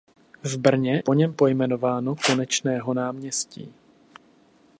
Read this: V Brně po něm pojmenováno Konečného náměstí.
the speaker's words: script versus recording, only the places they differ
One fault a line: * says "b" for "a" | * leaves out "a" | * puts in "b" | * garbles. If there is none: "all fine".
all fine